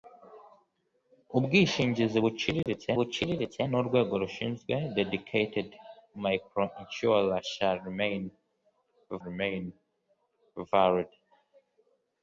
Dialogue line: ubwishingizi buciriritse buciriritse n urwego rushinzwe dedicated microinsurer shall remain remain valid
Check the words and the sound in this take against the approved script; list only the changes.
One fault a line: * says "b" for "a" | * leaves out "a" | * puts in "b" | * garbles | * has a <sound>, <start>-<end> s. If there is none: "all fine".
* has a dropout, 2.6-2.7 s